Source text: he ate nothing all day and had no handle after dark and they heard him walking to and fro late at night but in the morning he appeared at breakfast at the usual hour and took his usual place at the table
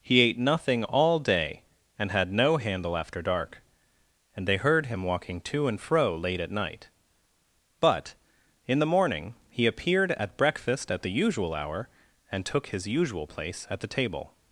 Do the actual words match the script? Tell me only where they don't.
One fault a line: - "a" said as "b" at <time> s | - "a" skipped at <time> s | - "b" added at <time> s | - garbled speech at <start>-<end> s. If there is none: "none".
none